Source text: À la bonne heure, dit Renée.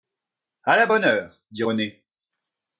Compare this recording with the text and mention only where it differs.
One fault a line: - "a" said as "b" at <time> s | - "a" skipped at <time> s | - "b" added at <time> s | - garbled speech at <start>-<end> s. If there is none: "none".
none